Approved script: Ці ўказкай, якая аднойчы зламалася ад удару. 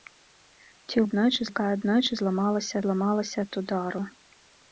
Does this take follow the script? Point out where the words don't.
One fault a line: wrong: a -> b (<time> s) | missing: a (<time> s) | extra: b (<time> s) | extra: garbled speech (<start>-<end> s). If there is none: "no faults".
wrong: ўказкай -> аднойчы (1.1 s)
extra: зламалася (2.9 s)